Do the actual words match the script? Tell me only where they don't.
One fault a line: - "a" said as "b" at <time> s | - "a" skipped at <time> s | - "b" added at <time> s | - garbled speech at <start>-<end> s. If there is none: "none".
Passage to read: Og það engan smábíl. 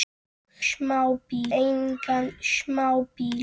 - "það" said as "smábíl" at 0.7 s